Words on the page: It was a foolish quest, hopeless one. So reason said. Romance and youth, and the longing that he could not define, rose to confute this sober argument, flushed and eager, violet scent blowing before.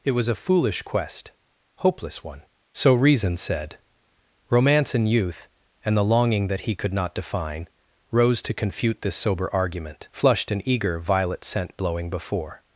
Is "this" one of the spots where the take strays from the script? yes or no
no